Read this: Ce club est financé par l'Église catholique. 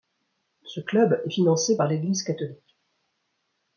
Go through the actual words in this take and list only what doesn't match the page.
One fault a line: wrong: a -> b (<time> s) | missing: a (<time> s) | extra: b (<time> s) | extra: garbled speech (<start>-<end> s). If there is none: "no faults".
no faults